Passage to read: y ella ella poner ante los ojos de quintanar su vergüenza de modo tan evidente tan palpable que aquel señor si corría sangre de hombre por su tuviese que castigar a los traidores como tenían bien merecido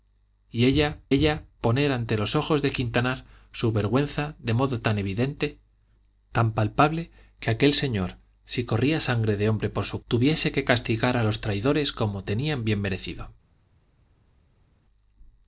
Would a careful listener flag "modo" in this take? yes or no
no